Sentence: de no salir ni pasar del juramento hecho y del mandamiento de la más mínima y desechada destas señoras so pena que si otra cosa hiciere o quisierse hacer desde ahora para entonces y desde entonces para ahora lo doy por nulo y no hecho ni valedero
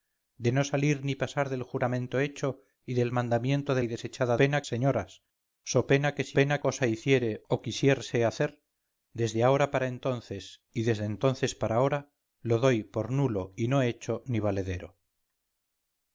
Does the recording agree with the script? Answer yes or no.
no